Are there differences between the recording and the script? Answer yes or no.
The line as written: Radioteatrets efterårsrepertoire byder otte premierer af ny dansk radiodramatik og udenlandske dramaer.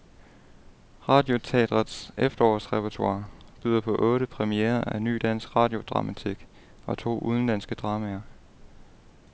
yes